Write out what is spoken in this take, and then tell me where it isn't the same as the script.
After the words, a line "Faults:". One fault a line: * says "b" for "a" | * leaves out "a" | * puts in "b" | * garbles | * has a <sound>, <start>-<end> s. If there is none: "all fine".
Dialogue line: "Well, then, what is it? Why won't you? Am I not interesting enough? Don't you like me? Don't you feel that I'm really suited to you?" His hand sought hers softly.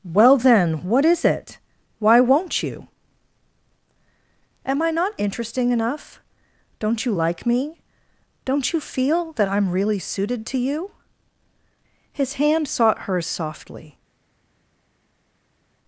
"Well, then, what is it? Why won't you? Am I not interesting enough? Don't you like me? Don't you feel that I'm really suited to you?" His hand sought hers softly.
Faults:
all fine